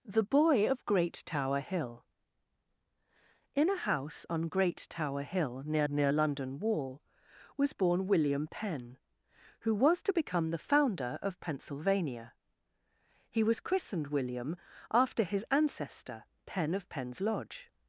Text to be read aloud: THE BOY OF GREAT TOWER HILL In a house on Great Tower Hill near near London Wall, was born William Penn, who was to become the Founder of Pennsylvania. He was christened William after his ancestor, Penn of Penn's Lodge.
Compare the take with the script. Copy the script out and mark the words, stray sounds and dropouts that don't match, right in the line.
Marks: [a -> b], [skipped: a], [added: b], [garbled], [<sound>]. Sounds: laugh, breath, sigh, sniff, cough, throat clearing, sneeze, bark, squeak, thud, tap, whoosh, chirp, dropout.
THE BOY OF GREAT TOWER HILL In a house on Great Tower Hill near near London Wall, was born William Penn, who was to become the Founder of Pennsylvania. He was christened William after his ancestor, Penn of Penn's Lodge.